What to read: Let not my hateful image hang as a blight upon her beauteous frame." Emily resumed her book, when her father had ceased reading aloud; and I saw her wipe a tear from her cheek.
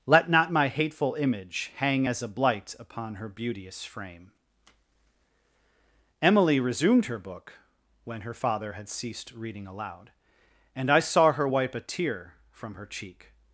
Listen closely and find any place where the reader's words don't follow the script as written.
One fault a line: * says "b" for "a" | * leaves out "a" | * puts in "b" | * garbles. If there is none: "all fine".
all fine